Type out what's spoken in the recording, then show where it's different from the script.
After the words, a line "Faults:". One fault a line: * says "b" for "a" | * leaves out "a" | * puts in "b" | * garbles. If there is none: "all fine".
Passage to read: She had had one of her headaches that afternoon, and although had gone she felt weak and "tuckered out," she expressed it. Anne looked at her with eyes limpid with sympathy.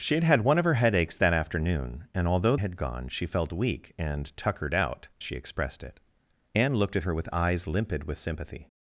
She had had one of her headaches that afternoon, and although had gone she felt weak and "tuckered out," she expressed it. Anne looked at her with eyes limpid with sympathy.
Faults:
all fine